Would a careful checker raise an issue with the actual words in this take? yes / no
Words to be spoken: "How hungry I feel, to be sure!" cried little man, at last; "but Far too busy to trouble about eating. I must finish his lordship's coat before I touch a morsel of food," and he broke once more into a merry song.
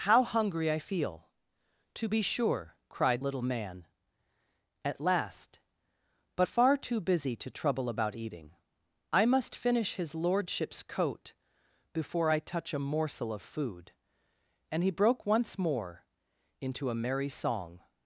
no